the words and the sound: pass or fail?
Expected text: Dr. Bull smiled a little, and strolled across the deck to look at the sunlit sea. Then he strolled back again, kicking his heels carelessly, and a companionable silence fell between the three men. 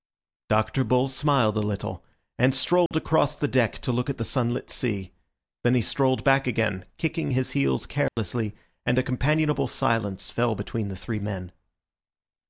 fail